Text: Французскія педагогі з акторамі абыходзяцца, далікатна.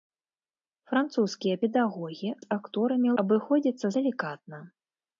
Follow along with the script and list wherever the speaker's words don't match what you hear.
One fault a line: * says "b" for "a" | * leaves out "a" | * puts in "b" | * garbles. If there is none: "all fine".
all fine